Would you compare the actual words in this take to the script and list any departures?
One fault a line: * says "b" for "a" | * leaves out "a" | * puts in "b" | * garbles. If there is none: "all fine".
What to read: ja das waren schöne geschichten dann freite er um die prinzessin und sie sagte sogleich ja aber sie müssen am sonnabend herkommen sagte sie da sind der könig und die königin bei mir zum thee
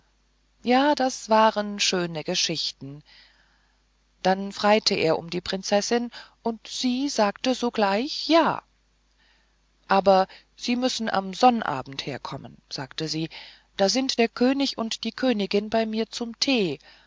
all fine